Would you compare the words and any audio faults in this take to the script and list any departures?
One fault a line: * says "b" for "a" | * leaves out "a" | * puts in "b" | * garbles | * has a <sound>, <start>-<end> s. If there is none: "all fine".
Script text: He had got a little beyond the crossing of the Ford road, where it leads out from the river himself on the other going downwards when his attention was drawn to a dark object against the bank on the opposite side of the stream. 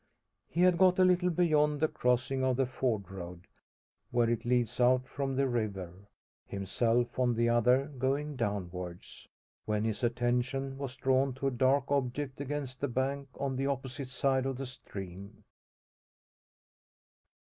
all fine